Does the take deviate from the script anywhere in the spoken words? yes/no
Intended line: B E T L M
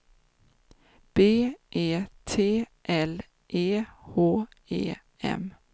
yes